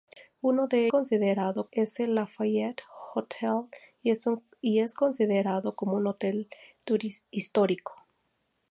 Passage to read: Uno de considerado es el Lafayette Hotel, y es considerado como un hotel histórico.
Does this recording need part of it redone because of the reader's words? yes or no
no